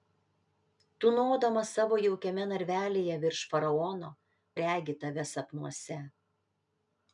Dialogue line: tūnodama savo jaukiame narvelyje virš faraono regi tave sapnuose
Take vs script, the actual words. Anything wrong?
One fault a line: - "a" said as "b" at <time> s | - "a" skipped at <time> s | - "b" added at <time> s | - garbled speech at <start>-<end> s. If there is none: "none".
none